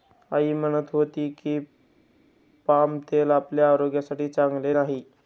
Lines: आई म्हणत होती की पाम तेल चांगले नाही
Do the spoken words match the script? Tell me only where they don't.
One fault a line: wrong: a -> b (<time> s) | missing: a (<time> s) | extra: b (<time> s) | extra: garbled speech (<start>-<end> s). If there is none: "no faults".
extra: आपल्या आरोग्यासाठी (3.3 s)